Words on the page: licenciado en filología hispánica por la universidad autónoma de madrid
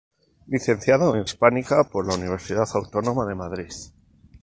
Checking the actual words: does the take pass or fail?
fail